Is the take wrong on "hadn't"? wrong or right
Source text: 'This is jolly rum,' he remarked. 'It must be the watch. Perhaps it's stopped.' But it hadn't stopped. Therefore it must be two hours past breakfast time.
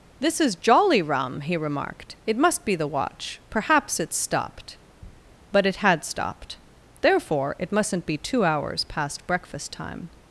wrong